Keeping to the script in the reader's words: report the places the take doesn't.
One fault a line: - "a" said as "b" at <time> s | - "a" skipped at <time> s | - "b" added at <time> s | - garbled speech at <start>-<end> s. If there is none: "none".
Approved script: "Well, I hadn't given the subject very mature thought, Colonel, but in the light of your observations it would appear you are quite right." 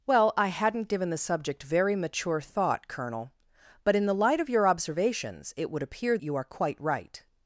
none